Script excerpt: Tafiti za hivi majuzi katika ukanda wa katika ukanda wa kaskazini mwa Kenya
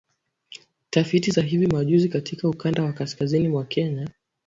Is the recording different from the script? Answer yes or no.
yes